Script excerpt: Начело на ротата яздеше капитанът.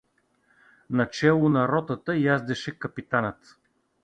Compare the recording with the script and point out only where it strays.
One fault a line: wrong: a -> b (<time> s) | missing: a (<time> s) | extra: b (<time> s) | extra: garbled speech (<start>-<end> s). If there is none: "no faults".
no faults